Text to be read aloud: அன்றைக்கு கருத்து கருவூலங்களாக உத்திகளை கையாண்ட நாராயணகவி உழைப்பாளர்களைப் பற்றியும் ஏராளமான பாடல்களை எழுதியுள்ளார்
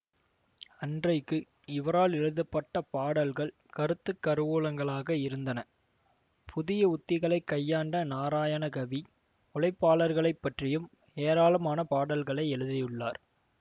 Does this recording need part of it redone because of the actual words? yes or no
yes